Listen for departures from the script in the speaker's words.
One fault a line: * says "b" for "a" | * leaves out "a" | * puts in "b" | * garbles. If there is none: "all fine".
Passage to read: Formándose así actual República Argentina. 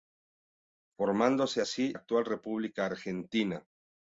all fine